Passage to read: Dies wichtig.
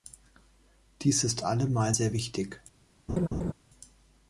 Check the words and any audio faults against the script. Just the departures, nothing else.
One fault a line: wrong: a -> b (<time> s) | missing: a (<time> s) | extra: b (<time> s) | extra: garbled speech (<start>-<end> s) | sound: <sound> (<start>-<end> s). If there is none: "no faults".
extra: ist allemal sehr (1.2 s)
sound: laugh (3.1-3.5 s)